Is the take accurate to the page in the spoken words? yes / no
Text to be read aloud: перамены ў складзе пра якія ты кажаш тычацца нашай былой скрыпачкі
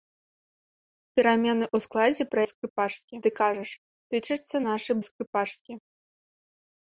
no